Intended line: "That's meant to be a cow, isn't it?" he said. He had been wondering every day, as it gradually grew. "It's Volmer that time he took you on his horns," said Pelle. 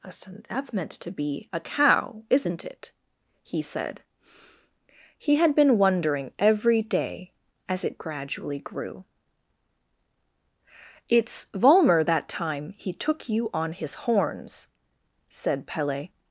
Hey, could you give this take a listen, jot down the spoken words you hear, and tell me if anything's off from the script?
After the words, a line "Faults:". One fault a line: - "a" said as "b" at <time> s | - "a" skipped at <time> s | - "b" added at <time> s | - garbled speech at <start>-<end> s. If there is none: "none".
"That's meant to be a cow, isn't it?" he said. He had been wondering every day, as it gradually grew. "It's Volmer that time he took you on his horns," said Pelle.
Faults:
none